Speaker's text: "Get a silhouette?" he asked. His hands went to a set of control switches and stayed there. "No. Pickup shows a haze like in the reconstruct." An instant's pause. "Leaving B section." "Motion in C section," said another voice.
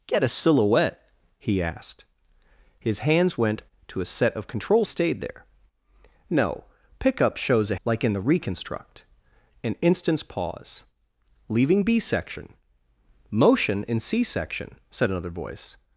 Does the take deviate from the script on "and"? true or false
true